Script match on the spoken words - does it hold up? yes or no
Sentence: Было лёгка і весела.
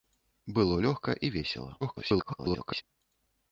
no